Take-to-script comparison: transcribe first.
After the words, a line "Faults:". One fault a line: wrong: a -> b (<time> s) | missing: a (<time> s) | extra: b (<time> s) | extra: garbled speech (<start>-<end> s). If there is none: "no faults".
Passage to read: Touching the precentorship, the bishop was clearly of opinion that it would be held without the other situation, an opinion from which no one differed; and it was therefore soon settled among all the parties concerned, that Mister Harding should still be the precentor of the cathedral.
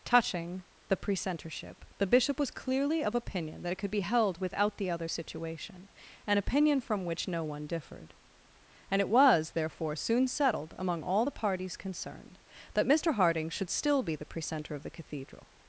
Touching the precentorship, the bishop was clearly of opinion that it could be held without the other situation, an opinion from which no one differed; and it was therefore soon settled among all the parties concerned, that Mister Harding should still be the precentor of the cathedral.
Faults:
wrong: would -> could (3.8 s)